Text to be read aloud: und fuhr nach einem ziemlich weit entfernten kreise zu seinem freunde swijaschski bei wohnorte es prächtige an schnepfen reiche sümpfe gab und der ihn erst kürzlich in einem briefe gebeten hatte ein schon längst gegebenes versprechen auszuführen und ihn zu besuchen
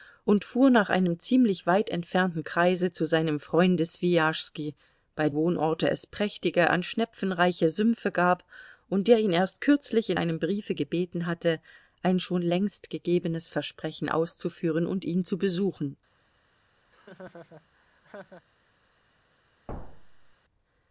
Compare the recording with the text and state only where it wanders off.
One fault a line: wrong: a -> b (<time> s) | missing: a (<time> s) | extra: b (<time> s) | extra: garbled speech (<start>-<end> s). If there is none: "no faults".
no faults